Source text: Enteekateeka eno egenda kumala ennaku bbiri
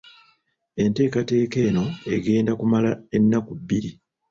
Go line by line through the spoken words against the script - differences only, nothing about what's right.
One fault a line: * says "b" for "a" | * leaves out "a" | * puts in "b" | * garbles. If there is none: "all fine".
all fine